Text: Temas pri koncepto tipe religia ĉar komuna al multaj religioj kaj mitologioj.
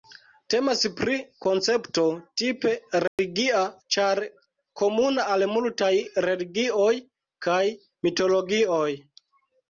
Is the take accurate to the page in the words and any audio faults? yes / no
no